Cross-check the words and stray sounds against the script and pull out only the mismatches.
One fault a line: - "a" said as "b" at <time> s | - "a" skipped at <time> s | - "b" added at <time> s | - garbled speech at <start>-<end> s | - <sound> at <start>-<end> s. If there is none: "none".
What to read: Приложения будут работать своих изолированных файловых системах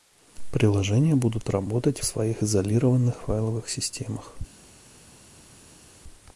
none